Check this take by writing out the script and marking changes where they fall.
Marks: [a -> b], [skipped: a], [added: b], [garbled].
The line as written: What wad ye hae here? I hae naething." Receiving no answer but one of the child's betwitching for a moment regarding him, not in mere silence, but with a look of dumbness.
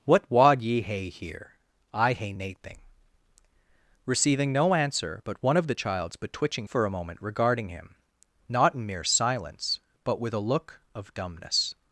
What wad ye hae here? I hae naething." Receiving no answer but one of the child's betwitching for a moment regarding him, not in mere silence, but with a look of dumbness.